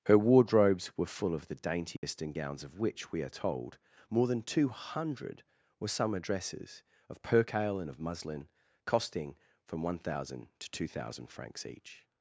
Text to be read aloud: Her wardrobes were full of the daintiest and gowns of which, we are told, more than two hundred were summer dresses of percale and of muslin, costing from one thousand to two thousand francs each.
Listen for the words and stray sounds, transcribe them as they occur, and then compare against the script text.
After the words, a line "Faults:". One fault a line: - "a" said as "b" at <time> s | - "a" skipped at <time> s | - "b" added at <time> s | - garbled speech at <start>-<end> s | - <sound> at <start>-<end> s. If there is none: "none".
Her wardrobes were full of the daintiest and gowns of which, we are told, more than two hundred were summer dresses of percale and of muslin, costing from one thousand to two thousand francs each.
Faults:
- dropout at 2.0-2.0 s